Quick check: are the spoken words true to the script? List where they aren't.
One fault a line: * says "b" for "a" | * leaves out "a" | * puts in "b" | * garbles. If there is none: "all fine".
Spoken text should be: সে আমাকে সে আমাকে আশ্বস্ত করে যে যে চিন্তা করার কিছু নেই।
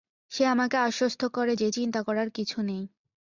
* leaves out "সে আমাকে"
* leaves out "যে"